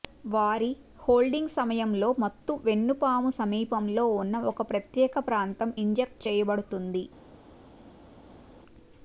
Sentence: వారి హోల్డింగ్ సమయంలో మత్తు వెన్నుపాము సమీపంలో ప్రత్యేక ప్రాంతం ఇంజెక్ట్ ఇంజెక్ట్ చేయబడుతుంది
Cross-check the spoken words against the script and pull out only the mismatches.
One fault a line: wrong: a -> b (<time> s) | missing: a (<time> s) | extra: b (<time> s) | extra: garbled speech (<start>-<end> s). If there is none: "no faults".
extra: ఉన్న ఒక (4.2 s)
missing: ఇంజెక్ట్ (6.2 s)